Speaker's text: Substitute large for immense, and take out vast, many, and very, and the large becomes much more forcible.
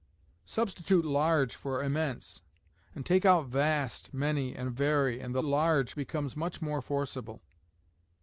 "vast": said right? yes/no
yes